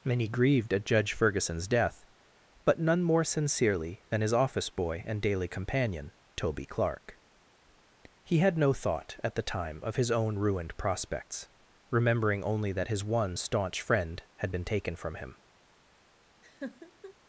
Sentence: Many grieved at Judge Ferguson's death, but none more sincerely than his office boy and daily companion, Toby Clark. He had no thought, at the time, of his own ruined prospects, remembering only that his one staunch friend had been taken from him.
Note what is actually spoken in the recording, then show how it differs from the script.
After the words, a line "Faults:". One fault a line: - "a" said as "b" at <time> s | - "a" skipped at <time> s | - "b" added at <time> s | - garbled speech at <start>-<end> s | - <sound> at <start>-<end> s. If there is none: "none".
Many grieved at Judge Ferguson's death, but none more sincerely than his office boy and daily companion, Toby Clark. He had no thought, at the time, of his own ruined prospects, remembering only that his one staunch friend had been taken from him.
Faults:
- laugh at 16.4-17.1 s